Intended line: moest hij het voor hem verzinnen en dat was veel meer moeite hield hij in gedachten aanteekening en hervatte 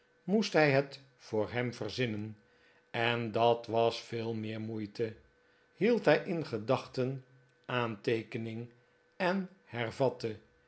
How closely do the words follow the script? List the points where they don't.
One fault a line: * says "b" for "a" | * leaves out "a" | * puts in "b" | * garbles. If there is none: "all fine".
all fine